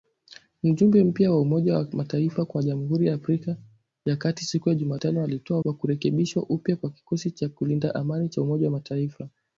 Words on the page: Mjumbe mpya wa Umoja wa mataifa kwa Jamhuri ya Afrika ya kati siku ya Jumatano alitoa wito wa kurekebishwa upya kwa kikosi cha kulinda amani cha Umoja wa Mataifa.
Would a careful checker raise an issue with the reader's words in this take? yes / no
yes